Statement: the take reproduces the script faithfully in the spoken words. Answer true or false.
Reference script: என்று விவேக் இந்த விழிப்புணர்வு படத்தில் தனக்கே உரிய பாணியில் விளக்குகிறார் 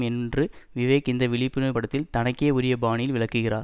true